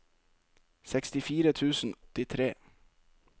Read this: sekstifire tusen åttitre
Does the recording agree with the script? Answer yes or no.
yes